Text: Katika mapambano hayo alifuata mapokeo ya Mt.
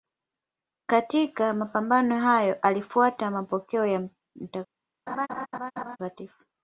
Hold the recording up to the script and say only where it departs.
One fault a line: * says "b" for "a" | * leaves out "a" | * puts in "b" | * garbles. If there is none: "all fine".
all fine